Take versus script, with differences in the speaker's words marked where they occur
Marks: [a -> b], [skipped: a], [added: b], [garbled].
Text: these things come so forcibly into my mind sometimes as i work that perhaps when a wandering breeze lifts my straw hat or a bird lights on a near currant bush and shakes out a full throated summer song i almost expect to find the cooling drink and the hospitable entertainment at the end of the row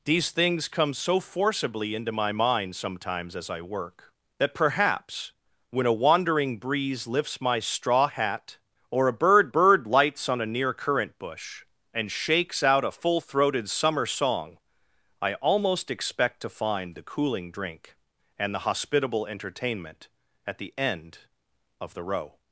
these things come so forcibly into my mind sometimes as i work that perhaps when a wandering breeze lifts my straw hat or a bird [added: bird] lights on a near currant bush and shakes out a full throated summer song i almost expect to find the cooling drink and the hospitable entertainment at the end of the row